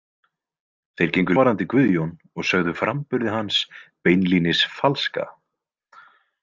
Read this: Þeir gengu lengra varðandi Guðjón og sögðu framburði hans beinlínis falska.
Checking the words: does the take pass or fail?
fail